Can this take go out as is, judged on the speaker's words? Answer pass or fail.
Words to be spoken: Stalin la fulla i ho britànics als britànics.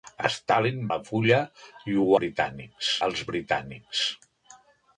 pass